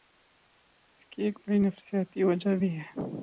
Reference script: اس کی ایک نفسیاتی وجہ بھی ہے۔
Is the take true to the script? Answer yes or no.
no